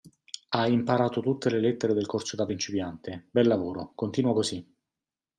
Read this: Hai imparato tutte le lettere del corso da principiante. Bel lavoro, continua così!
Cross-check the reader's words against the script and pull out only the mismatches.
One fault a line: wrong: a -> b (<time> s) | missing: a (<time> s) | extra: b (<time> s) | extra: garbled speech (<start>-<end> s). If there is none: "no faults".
no faults